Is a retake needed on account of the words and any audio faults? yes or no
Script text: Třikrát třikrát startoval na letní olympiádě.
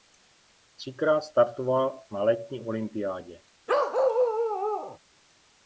yes